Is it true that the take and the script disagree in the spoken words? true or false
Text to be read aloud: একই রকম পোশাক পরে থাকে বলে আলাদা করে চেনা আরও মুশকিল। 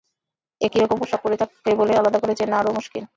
false